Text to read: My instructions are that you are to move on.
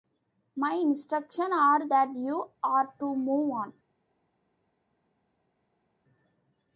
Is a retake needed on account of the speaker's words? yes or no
no